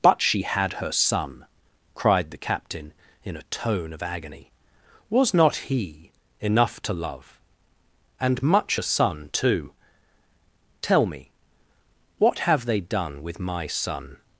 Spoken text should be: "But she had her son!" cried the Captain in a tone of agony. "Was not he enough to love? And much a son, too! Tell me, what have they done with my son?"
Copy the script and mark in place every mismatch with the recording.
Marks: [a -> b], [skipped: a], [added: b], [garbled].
"But she had her son!" cried the Captain in a tone of agony. "Was not he enough to love? And much a son, too! Tell me, what have they done with my son?"